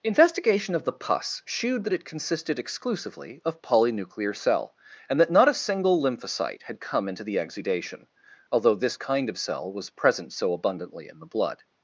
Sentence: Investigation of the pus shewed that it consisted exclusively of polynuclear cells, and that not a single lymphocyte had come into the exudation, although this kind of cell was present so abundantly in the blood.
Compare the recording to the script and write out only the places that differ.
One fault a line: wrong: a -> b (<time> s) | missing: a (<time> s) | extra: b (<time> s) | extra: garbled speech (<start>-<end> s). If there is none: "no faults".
wrong: cells -> cell (4.3 s)